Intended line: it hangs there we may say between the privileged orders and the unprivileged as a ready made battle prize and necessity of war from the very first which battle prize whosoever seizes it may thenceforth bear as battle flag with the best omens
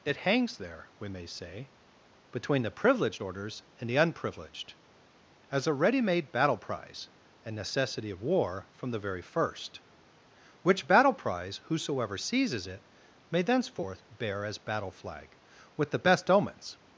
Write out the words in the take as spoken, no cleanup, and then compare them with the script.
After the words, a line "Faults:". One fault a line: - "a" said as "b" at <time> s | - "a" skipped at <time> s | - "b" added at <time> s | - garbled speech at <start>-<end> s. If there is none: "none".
it hangs there we may say between the privileged orders and the unprivileged as a ready made battle prize and necessity of war from the very first which battle prize whosoever seizes it may thenceforth bear as battle flag with the best omens
Faults:
none